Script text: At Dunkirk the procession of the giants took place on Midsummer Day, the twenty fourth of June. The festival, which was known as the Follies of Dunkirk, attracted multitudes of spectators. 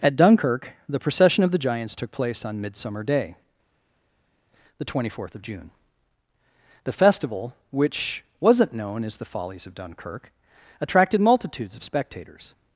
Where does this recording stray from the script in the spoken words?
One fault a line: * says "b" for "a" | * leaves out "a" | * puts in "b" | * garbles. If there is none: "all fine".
* says "wasn't" for "was"